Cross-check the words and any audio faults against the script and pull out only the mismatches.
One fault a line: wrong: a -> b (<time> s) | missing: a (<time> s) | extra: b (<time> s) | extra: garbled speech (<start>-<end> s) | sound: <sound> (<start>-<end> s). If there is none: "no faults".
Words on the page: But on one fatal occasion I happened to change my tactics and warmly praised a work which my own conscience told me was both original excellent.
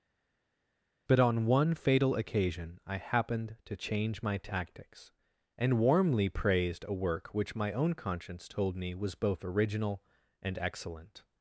extra: and (10.4 s)